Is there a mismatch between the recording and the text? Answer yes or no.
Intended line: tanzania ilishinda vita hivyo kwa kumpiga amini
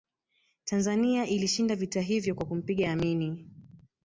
no